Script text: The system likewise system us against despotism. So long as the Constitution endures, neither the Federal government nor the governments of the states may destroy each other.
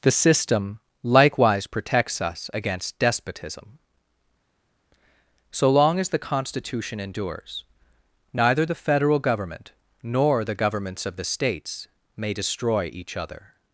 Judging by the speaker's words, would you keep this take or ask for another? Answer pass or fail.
fail